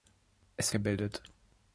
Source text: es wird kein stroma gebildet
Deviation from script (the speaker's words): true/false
true